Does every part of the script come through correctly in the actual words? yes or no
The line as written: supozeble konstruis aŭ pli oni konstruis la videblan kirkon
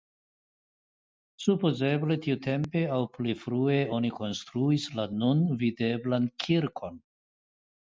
no